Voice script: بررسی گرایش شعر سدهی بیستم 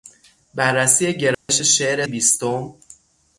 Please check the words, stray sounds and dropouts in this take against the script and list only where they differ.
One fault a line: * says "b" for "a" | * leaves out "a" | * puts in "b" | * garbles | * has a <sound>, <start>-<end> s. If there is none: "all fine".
* has a dropout, 1.3-1.5 s
* leaves out "سدهی"